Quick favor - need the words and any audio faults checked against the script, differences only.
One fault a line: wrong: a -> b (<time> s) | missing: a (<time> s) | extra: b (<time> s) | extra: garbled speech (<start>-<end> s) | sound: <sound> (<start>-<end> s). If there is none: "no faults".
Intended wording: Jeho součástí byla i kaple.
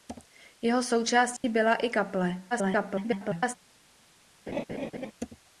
sound: dropout (1.4-1.4 s)
extra: garbled speech (2.5-3.6 s)
sound: laugh (4.5-5.1 s)